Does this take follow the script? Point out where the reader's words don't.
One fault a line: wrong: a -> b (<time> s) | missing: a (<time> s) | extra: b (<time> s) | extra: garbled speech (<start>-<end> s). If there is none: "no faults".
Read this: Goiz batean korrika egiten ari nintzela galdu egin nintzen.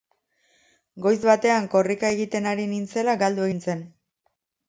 missing: egin (3.5 s)